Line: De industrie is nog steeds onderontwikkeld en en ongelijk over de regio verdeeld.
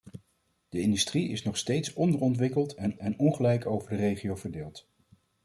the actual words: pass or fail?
pass